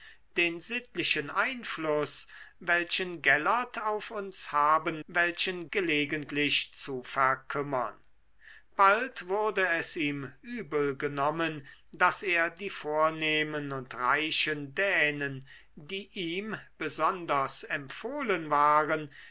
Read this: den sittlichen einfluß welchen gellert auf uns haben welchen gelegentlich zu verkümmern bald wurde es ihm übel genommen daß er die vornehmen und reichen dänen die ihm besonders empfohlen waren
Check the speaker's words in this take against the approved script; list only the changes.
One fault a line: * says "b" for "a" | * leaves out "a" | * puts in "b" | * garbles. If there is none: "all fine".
all fine